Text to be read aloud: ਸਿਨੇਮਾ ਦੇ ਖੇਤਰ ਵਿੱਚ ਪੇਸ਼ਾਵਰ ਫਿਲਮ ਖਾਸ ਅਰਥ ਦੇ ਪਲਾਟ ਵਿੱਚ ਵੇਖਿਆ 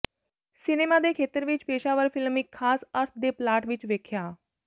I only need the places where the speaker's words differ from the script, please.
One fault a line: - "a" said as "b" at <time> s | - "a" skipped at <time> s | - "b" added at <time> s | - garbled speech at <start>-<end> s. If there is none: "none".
- "ਇੱਕ" added at 2.4 s